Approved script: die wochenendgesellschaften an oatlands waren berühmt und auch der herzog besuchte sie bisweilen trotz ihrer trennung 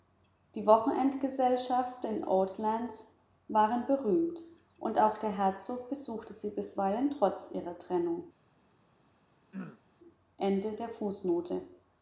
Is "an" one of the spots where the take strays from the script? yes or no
yes